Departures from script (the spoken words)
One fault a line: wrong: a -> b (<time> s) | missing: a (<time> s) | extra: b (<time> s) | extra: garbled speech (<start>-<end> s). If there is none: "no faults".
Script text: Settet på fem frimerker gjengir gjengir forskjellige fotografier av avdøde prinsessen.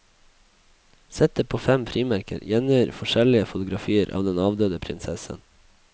missing: gjengir (3.0 s)
extra: den (4.3 s)